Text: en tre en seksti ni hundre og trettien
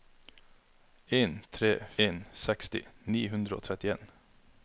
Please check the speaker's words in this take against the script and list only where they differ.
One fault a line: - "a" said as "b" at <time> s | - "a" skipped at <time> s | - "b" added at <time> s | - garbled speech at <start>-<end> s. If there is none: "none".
none